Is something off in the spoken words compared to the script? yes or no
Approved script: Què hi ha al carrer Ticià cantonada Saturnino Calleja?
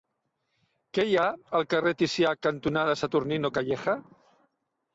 no